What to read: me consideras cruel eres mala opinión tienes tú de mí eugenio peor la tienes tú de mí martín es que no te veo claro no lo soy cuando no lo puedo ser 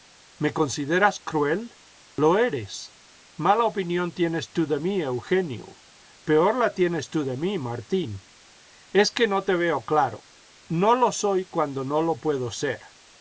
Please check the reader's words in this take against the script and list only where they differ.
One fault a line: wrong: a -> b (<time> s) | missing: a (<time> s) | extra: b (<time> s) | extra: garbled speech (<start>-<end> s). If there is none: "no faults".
extra: lo (2.2 s)